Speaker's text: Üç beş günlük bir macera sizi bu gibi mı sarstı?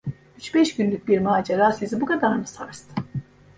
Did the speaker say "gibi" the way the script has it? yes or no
no